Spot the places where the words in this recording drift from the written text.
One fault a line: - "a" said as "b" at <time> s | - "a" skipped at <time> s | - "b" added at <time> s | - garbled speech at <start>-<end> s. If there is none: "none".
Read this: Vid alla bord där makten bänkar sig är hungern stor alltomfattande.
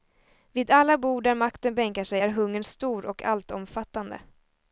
- "och" added at 3.1 s